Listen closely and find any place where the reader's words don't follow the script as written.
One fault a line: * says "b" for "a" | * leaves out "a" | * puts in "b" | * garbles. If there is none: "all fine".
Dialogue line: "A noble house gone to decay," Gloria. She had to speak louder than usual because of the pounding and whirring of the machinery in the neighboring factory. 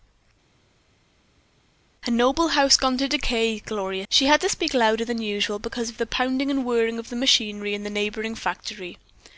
all fine